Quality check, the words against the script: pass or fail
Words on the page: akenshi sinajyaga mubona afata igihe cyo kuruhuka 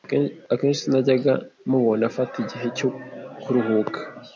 pass